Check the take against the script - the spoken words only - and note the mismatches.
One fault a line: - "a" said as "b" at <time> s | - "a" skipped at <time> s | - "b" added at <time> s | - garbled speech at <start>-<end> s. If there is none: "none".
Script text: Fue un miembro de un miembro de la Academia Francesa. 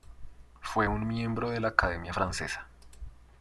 - "un miembro de" skipped at 1.6 s